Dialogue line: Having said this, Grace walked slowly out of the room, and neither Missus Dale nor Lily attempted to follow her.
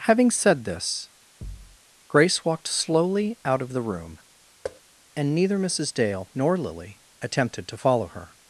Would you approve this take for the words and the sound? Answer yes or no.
no